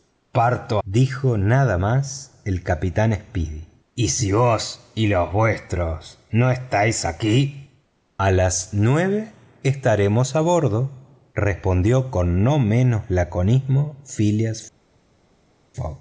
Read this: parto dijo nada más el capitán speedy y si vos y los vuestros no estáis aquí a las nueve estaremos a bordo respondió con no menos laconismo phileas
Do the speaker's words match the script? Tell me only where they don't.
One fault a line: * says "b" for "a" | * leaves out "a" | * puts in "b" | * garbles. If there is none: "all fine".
all fine